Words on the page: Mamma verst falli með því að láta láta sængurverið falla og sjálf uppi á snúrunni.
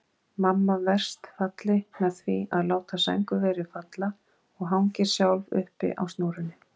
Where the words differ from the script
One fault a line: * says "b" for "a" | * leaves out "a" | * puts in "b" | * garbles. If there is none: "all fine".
* leaves out "láta"
* puts in "hangir"